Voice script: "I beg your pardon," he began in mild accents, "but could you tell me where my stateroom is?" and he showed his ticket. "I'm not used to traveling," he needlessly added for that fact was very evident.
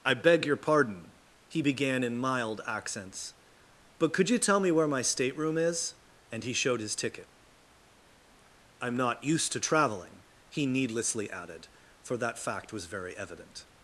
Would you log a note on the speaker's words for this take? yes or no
no